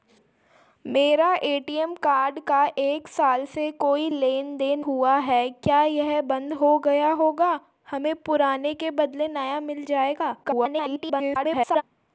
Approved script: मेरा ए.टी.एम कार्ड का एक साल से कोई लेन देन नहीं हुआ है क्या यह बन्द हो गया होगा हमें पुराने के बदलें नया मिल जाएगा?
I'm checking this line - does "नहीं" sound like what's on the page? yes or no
no